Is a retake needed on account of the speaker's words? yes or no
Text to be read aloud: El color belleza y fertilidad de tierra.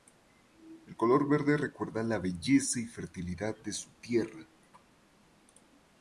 yes